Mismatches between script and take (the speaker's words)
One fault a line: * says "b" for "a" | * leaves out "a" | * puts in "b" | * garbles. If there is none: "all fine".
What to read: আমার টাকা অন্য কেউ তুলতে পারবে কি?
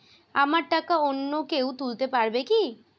all fine